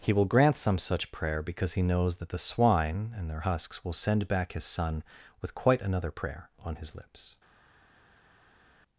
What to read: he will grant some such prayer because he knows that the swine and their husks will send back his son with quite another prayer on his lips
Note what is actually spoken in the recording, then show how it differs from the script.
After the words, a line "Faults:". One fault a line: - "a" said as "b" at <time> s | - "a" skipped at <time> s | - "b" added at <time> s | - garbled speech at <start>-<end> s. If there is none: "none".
he will grant some such prayer because he knows that the swine and their husks will send back his son with quite another prayer on his lips
Faults:
none